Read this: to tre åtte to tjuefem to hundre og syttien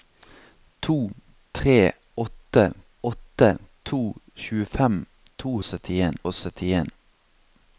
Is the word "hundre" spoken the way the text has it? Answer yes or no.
no